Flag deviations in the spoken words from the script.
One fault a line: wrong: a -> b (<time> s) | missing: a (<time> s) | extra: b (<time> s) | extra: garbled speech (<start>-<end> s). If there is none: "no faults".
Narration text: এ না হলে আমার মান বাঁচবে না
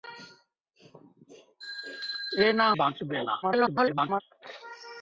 missing: হলে আমার মান (2.7 s)
extra: garbled speech (3.4-4.2 s)